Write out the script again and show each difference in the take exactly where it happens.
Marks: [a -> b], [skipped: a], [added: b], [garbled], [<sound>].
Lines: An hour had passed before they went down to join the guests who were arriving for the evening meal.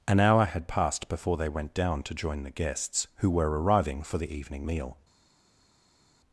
An hour had passed before they went down to join the guests who were arriving for the evening meal.